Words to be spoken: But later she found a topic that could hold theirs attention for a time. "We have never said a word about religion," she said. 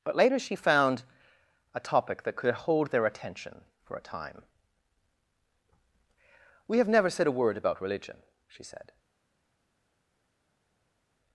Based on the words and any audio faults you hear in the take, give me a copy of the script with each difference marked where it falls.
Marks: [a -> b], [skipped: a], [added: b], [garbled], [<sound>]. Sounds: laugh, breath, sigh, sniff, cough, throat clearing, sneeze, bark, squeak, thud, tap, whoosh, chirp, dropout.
But later she found a topic that could hold [theirs -> their] attention for a time. "We have never said a word about religion," she said.